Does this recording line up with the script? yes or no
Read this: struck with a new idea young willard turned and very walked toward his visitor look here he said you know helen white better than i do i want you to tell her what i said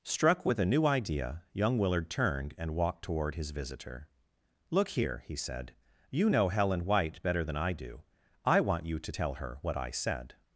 no